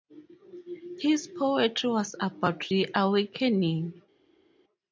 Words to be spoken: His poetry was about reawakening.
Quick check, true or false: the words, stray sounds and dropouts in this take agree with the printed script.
true